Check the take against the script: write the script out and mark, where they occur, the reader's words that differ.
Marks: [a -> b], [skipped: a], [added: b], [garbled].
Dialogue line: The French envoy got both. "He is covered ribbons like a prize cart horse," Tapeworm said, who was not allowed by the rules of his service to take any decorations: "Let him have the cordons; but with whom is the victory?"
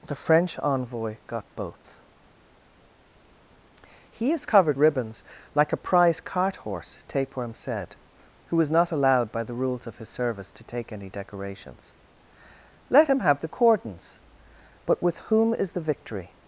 The French envoy got both. "He is covered ribbons like a prize cart horse," Tapeworm said, who was not allowed by the rules of his service to take any decorations: "Let him have the cordons; but with whom is the victory?"